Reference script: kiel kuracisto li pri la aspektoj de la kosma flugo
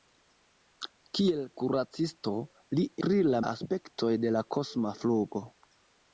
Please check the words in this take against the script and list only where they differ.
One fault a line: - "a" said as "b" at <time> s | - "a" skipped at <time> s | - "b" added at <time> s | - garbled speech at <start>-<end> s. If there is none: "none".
none